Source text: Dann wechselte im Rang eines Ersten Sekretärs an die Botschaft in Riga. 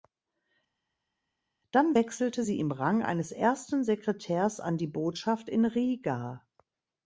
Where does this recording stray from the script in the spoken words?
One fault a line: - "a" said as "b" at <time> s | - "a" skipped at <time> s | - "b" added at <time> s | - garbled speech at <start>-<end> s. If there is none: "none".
- "sie" added at 2.4 s